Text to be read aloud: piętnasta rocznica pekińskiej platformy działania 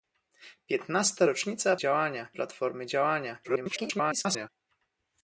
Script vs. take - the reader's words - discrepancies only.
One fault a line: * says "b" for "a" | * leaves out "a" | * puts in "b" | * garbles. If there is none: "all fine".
* says "działania" for "pekińskiej"
* garbles